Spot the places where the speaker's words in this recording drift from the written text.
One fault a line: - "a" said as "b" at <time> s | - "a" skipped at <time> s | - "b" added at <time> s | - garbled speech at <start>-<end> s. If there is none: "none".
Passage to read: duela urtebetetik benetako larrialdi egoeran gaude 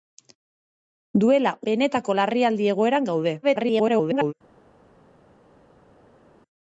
- "urtebetetik" skipped at 1.5 s
- garbled speech at 3.4-4.3 s